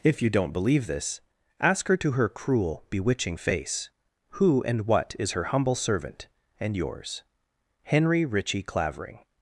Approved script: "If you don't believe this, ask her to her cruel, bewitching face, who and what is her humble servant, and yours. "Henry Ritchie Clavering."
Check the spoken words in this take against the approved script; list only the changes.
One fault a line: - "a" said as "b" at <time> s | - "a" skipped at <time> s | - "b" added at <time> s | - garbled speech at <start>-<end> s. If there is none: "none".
none